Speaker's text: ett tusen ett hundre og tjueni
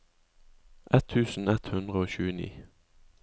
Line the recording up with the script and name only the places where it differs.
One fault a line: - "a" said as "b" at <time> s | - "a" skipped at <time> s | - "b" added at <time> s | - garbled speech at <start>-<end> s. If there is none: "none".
none